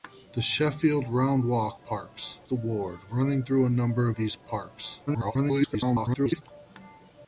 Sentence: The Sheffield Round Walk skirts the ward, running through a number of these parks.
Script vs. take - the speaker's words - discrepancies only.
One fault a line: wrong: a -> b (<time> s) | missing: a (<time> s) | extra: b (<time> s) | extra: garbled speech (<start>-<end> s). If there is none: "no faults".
wrong: skirts -> parks (1.7 s)
missing: of (4.1 s)
extra: garbled speech (5.1-6.4 s)